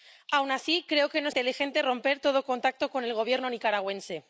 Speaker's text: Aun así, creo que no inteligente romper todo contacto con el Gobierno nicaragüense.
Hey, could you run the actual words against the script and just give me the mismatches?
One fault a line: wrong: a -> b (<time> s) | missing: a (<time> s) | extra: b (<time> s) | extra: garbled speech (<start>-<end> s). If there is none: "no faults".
no faults